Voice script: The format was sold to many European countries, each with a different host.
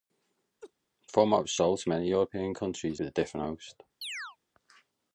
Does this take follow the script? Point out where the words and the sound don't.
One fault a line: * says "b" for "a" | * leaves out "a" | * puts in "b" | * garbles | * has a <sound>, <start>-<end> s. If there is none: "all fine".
* has a laugh, 0.6-0.7 s
* leaves out "each"
* has a chirp, 4.0-4.4 s